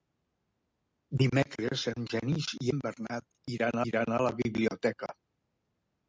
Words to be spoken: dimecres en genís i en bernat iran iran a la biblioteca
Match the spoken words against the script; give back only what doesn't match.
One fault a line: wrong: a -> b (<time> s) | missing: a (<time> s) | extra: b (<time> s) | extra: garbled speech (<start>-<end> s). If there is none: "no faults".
no faults